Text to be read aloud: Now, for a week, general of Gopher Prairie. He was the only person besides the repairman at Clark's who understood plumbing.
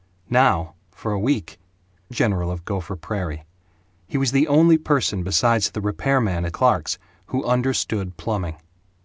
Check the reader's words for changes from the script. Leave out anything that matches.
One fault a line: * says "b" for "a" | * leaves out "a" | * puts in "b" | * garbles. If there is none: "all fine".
all fine